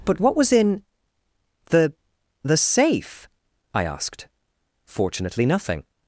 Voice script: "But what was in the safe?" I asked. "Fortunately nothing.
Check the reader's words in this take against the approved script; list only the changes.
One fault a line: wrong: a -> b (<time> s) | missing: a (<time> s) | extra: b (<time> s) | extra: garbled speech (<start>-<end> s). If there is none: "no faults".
extra: the (2.4 s)